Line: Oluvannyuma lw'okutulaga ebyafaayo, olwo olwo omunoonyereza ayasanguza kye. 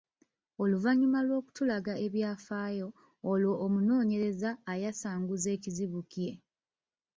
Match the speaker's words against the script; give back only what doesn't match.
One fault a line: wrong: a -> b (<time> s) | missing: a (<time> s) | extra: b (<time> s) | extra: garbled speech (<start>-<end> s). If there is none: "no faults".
missing: olwo (3.5 s)
extra: ekizibu (5.6 s)